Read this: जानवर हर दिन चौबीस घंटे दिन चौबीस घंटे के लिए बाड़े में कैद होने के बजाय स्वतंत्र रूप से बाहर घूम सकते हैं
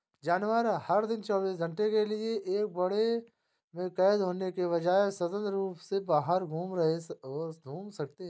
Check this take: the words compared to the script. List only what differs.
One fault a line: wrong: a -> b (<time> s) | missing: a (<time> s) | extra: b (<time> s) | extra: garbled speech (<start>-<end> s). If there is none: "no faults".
missing: दिन चौबीस घंटे (1.9 s)
extra: एक (2.6 s)